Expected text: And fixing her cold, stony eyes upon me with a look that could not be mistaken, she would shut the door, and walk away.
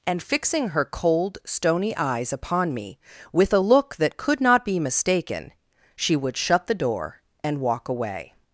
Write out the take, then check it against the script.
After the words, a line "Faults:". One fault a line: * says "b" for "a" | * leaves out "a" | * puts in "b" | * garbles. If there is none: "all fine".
And fixing her cold, stony eyes upon me with a look that could not be mistaken, she would shut the door, and walk away.
Faults:
all fine